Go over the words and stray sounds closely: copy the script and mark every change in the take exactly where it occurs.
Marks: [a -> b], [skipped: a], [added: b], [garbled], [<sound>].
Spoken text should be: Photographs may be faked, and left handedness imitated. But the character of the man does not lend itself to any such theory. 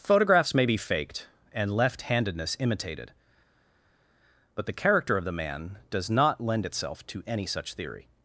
Photographs may be faked, and left handedness imitated. But the character of the man does not lend itself to any such theory.